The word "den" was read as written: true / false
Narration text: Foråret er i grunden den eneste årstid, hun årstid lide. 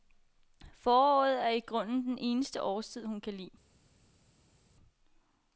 true